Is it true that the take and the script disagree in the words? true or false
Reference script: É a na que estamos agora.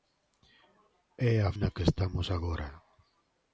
false